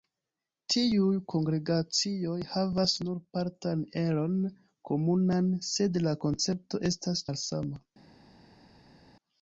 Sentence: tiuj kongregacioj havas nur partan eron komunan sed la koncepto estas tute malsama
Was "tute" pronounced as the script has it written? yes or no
no